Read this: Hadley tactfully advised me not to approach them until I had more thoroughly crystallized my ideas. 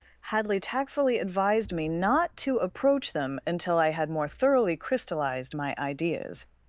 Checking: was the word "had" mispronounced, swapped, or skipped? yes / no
no